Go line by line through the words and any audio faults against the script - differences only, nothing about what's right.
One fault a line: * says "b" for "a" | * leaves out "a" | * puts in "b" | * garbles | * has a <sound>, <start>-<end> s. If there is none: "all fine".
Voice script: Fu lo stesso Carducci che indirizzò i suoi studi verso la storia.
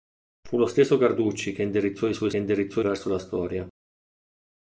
* says "indirizzò" for "studi"